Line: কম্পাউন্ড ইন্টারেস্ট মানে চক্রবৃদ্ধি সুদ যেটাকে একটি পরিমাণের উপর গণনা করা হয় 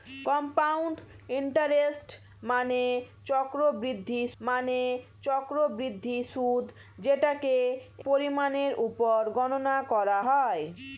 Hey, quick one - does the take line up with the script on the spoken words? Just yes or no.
no